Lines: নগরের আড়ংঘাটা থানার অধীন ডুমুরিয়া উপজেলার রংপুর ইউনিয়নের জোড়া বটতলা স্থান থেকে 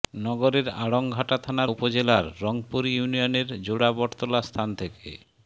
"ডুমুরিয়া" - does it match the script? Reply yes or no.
no